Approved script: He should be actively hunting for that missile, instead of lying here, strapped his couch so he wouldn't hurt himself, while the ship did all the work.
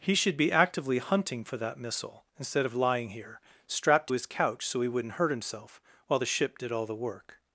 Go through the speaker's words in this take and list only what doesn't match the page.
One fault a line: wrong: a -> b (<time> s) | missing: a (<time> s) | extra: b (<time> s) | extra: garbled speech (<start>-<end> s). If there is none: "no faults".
no faults